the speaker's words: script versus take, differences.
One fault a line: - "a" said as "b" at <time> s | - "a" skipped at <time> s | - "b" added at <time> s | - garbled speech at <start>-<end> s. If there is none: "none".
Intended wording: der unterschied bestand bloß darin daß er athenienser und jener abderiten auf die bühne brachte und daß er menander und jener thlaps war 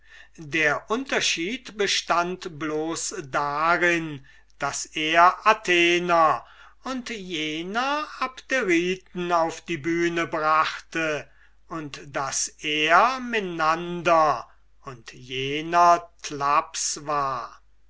none